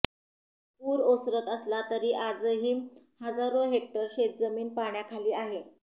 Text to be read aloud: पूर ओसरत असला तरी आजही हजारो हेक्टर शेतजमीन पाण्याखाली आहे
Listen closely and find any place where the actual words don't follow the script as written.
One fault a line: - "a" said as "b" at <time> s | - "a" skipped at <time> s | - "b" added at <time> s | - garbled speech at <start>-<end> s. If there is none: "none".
none